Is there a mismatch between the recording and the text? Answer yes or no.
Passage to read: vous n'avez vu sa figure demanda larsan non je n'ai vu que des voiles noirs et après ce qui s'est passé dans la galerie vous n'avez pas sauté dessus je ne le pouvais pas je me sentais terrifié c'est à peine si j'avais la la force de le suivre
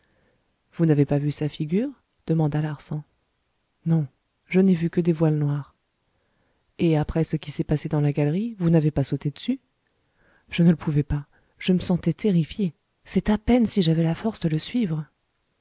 yes